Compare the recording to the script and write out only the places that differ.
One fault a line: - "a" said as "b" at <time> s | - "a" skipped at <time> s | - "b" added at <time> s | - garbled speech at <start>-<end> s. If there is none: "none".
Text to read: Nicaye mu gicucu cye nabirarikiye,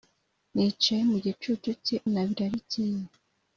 none